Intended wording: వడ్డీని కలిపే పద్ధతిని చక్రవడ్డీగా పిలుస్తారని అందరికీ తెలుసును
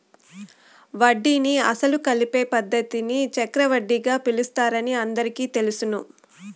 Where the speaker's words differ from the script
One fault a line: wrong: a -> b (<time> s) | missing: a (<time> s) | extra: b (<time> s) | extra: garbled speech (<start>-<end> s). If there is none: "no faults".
extra: అసలు (1.7 s)